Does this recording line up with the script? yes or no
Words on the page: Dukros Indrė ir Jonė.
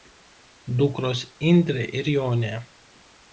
yes